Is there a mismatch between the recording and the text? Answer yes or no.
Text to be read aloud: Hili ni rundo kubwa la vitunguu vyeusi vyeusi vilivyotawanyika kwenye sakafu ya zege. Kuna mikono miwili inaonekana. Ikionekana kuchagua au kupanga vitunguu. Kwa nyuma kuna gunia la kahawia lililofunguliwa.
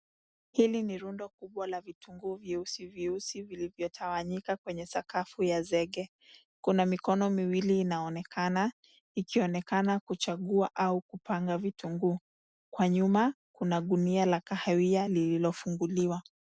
no